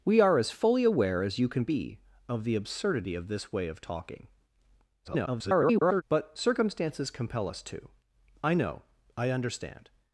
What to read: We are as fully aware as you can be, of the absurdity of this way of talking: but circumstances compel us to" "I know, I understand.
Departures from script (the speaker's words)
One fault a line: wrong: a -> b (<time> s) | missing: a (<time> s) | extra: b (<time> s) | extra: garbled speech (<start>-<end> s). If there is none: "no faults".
extra: garbled speech (5.0-6.0 s)